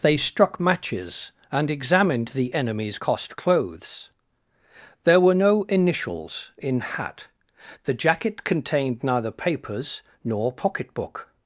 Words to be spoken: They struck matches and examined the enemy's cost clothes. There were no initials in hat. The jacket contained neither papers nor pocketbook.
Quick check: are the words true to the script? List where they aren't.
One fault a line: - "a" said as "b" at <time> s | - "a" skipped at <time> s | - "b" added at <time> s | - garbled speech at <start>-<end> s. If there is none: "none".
none